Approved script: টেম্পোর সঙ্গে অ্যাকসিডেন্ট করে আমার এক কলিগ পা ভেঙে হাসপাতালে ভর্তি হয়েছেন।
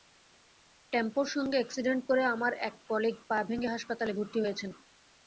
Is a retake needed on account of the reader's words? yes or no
no